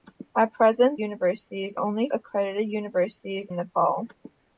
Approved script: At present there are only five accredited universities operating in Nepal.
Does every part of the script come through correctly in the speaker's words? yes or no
no